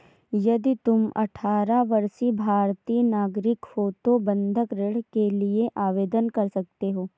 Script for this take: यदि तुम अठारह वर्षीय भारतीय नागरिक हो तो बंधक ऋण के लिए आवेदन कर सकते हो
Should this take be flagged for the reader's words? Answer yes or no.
no